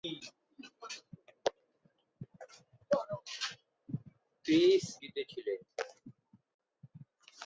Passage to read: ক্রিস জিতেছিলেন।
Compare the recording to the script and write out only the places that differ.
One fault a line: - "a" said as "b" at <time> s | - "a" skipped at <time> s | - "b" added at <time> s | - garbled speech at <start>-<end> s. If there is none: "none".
none